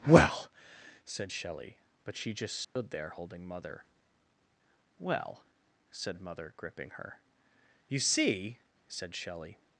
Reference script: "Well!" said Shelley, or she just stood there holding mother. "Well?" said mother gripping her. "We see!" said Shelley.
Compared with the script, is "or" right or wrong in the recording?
wrong